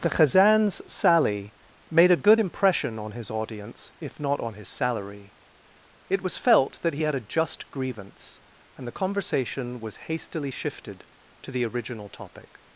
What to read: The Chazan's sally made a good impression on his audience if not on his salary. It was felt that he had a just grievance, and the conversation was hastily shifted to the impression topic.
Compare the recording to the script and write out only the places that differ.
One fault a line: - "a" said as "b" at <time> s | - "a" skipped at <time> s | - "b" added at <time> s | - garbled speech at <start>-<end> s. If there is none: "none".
- "impression" said as "original" at 11.6 s